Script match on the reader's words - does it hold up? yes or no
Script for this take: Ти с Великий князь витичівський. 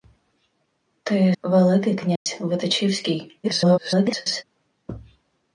no